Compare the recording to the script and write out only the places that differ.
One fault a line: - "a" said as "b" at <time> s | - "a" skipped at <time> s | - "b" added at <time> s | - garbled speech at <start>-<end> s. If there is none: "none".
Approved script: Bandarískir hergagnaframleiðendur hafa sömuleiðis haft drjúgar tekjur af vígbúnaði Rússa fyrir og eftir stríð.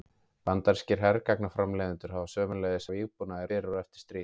- "haft drjúgar tekjur" skipped at 2.9 s
- "Rússa" skipped at 3.5 s